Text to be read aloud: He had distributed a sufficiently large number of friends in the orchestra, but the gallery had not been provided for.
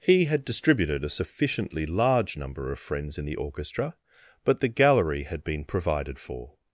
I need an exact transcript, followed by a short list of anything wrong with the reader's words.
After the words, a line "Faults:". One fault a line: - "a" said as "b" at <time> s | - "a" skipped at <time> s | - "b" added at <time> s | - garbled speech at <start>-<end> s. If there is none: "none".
He had distributed a sufficiently large number of friends in the orchestra, but the gallery had been provided for.
Faults:
- "not" skipped at 5.4 s